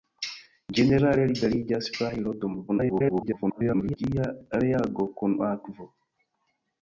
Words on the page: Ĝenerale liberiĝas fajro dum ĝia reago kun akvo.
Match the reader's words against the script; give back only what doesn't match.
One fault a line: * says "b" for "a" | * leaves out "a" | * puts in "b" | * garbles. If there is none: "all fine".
* garbles